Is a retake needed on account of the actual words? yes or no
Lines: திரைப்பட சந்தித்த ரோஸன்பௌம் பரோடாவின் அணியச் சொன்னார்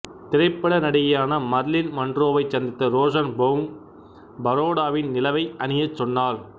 yes